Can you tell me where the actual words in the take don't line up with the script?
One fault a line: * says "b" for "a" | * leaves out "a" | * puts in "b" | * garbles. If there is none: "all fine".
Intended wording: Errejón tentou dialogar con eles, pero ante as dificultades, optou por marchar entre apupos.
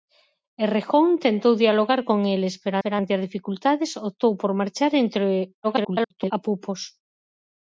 * puts in "pero"
* garbles